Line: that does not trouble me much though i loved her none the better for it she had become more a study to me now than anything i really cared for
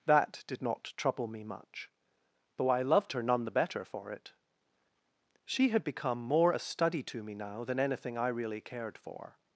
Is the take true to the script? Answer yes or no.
no